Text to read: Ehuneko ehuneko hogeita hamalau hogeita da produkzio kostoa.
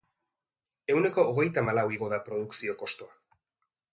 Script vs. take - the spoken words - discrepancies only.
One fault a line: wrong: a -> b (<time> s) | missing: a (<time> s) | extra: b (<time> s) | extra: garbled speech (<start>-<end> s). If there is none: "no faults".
missing: ehuneko (1.2 s)
wrong: hogeita -> igo (2.0 s)